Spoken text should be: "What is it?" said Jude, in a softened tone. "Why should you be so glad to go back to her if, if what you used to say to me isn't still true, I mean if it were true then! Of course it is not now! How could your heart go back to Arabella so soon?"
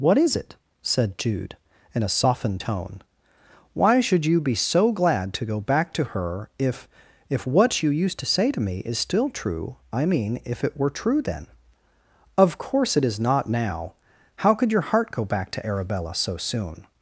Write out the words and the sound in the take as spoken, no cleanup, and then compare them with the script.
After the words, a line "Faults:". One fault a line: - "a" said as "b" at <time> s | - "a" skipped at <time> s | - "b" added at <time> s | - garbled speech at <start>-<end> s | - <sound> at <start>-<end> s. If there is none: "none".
"What is it?" said Jude, in a softened tone. "Why should you be so glad to go back to her if, if what you used to say to me is still true, I mean if it were true then! Of course it is not now! How could your heart go back to Arabella so soon?"
Faults:
- "isn't" said as "is" at 8.8 s